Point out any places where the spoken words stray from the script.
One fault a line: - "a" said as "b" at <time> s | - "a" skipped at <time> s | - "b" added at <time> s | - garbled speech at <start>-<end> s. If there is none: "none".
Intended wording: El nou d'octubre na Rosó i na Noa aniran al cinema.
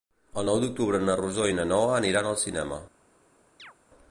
none